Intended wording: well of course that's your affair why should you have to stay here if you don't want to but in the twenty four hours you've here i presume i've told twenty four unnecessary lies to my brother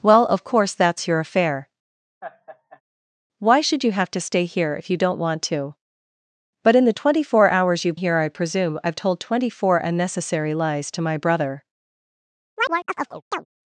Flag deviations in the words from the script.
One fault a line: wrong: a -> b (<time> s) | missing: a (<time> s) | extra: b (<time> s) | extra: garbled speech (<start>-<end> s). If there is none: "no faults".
no faults